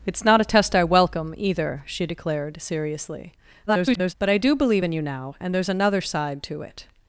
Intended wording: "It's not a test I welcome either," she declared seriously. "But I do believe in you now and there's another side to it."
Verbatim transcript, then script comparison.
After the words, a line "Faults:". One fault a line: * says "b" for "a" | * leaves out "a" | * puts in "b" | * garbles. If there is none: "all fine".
"It's not a test I welcome either," she declared seriously. [garbled] "But I do believe in you now and there's another side to it."
Faults:
* garbles